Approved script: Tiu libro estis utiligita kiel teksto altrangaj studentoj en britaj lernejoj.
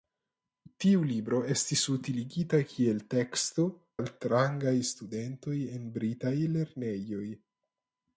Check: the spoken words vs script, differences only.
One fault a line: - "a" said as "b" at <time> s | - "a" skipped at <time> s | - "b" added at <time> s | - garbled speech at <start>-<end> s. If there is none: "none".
none